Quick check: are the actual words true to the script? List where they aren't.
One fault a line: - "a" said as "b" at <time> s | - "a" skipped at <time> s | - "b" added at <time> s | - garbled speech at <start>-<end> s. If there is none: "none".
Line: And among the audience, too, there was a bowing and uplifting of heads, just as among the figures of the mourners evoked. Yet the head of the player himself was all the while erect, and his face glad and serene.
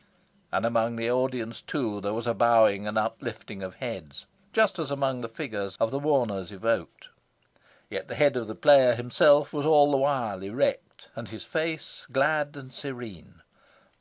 none